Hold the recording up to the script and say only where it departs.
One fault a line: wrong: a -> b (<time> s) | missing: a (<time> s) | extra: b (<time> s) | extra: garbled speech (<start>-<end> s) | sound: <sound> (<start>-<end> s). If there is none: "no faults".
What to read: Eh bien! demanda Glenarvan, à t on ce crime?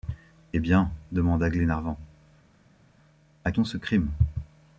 no faults